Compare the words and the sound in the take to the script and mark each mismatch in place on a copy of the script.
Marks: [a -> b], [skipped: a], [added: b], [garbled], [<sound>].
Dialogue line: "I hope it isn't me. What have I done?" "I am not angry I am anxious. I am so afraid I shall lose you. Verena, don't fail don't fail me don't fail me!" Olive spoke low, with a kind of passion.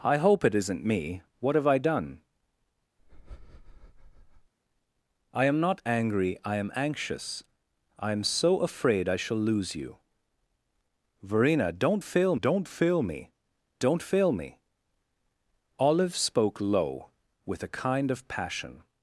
"I hope it isn't me. What have I done?" [breath] "I am not angry I am anxious. I am so afraid I shall lose you. Verena, don't fail don't fail me don't fail me!" Olive spoke low, with a kind of passion.